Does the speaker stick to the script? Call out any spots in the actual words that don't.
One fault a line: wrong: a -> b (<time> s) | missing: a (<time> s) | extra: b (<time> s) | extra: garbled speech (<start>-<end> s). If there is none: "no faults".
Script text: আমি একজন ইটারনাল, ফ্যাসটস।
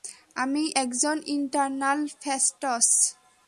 no faults